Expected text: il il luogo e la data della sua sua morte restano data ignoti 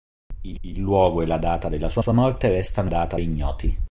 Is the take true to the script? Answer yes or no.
yes